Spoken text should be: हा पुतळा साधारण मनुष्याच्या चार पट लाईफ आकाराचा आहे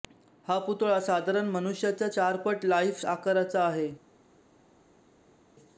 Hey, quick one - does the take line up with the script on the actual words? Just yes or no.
yes